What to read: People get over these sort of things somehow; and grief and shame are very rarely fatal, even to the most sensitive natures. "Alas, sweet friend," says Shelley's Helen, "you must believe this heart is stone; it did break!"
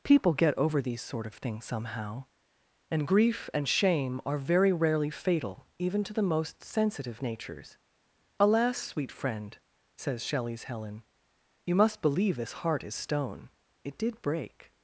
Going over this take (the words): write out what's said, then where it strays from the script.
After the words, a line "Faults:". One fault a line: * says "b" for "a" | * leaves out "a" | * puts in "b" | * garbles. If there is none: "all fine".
People get over these sort of things somehow; and grief and shame are very rarely fatal, even to the most sensitive natures. "Alas, sweet friend," says Shelley's Helen, "you must believe this heart is stone; it did break!"
Faults:
all fine